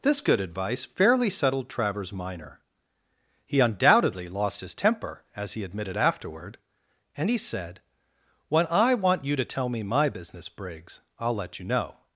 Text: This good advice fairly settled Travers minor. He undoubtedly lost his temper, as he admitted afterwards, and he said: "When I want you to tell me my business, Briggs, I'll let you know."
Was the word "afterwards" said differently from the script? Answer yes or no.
yes